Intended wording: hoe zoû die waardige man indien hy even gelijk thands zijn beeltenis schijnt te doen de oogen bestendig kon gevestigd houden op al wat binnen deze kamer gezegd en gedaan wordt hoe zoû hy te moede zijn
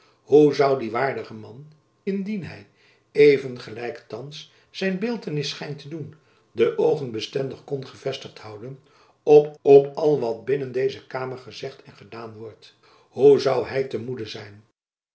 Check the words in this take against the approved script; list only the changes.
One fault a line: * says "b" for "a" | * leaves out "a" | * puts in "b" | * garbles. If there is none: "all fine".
* puts in "op"